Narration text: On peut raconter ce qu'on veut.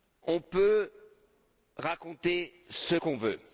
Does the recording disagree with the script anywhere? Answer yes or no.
no